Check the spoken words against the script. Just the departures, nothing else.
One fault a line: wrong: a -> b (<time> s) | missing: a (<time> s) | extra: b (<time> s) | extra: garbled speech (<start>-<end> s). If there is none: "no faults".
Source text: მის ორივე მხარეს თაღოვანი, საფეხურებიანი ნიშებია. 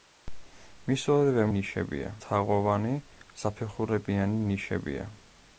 wrong: მხარეს -> ნიშებია (1.6 s)